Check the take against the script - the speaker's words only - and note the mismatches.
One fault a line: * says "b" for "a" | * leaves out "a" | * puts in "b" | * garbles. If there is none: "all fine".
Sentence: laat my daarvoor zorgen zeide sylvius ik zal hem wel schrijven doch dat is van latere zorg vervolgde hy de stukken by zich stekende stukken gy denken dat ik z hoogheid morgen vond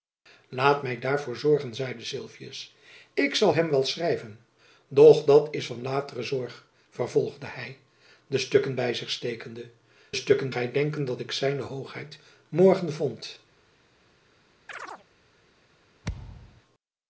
all fine